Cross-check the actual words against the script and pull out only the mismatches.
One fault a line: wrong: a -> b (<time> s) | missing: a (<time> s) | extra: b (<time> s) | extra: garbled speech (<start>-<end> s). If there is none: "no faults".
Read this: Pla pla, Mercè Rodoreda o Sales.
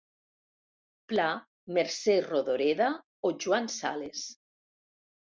missing: pla (1.2 s)
extra: Joan (3.4 s)